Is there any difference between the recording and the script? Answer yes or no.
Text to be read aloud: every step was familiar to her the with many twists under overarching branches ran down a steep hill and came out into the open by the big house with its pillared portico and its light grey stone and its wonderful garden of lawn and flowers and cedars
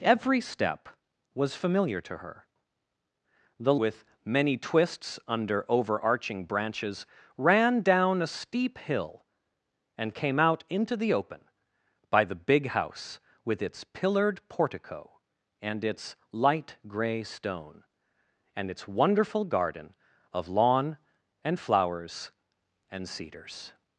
no